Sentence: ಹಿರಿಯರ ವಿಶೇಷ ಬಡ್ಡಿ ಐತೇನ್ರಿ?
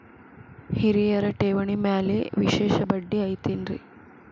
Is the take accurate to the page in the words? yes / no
no